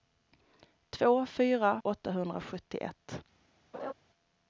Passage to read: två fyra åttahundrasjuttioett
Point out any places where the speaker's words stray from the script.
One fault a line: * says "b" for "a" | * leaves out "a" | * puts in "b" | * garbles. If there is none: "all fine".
all fine